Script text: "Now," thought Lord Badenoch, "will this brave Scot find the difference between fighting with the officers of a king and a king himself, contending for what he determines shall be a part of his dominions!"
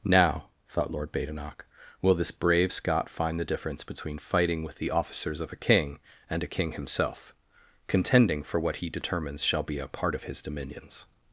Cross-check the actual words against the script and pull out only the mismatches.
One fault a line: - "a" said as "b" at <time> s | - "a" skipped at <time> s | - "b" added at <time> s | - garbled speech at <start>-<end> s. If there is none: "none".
none